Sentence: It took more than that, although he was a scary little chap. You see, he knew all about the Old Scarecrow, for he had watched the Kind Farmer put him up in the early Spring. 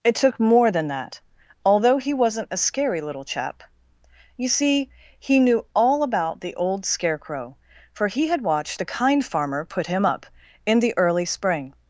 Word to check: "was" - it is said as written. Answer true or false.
false